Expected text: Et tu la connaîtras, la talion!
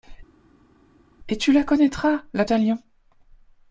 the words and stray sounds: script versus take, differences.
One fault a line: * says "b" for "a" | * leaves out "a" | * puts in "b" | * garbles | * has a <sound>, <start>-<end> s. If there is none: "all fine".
all fine